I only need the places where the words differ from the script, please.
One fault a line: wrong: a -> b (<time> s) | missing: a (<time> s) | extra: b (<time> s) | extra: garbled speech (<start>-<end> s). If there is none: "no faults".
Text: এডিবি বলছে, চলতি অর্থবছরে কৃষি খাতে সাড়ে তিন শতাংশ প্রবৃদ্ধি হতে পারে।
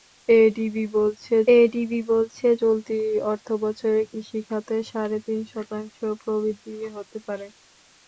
extra: এডিবি বলছে (1.6 s)